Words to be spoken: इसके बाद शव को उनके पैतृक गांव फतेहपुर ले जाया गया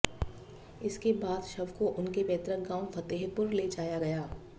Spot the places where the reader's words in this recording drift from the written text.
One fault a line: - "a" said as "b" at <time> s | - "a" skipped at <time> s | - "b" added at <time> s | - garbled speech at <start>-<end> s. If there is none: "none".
none